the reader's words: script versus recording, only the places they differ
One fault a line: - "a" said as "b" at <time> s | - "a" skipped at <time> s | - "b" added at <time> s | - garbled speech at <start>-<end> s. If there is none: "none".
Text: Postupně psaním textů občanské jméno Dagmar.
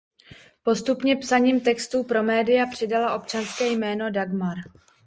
- "pro média přidala" added at 2.0 s